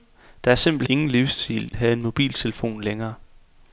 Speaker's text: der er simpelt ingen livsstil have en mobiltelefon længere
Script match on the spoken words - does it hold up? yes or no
yes